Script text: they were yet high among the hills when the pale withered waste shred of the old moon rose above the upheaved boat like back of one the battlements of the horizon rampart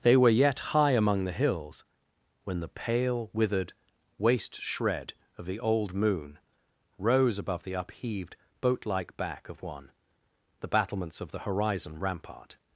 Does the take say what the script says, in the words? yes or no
yes